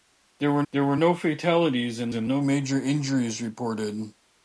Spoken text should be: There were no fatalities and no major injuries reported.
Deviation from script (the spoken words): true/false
true